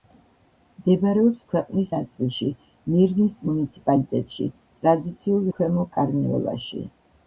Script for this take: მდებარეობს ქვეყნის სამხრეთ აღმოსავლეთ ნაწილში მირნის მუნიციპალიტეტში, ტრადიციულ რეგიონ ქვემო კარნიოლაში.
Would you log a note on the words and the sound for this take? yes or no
yes